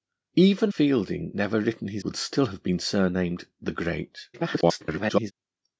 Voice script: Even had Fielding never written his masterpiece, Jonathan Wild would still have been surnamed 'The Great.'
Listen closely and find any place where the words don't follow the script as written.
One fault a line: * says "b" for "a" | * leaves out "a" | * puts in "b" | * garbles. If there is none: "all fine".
* leaves out "had"
* leaves out "masterpiece Jonathan Wild"
* garbles